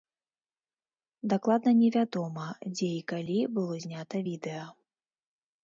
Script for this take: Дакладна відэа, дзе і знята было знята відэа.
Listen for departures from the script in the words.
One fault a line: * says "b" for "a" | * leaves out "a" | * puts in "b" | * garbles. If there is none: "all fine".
* says "невядома" for "відэа"
* says "калі" for "знята"